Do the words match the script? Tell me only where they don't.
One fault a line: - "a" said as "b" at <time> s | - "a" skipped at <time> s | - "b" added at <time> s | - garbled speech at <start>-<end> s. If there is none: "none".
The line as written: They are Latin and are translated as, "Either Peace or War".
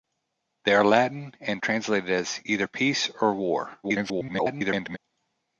- "are" skipped at 1.6 s
- garbled speech at 3.8-5.0 s